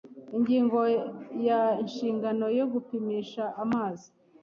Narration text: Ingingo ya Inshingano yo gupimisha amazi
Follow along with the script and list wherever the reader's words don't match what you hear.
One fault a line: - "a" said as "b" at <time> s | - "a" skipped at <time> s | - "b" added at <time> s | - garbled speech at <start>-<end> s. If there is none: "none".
none